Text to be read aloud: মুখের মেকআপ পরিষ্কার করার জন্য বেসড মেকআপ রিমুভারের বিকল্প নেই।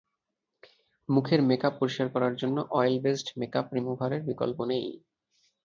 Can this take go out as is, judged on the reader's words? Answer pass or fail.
fail